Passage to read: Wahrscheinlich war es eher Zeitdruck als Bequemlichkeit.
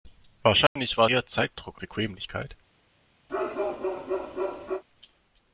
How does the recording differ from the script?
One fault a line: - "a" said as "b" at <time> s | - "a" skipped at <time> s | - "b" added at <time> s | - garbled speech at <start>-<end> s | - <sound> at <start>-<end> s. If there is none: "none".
- dropout at 0.7-0.8 s
- "es" skipped at 1.1 s
- "als" skipped at 1.8 s
- bark at 3.3-4.8 s